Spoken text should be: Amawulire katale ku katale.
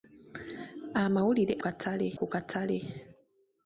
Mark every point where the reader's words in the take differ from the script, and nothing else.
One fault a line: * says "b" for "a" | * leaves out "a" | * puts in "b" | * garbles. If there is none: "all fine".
all fine